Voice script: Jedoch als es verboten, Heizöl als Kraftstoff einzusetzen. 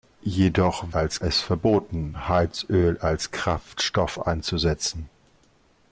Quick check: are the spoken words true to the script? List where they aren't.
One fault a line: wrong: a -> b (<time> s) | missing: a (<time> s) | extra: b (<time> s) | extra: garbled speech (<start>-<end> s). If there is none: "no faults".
no faults